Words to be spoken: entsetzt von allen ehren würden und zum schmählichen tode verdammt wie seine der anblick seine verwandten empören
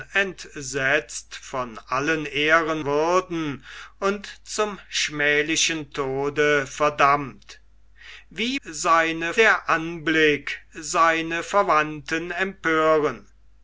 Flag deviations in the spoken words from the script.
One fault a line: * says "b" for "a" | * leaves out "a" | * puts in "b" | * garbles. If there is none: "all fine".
all fine